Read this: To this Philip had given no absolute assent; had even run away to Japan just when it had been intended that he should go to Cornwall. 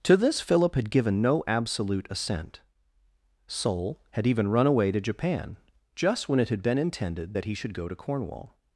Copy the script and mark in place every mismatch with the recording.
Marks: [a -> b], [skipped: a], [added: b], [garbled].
To this Philip had given no absolute assent; [added: sol] had even run away to Japan just when it had been intended that he should go to Cornwall.